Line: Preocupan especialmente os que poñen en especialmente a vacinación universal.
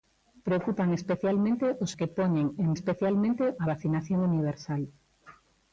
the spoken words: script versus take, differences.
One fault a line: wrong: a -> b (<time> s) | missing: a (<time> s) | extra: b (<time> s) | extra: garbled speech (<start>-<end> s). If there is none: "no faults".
no faults